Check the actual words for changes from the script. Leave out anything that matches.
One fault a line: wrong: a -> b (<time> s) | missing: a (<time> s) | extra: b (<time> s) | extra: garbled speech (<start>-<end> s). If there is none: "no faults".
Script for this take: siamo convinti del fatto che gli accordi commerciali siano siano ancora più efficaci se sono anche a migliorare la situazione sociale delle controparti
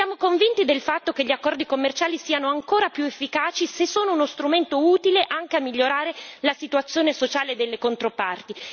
missing: siano (2.5 s)
extra: uno strumento utile (4.1 s)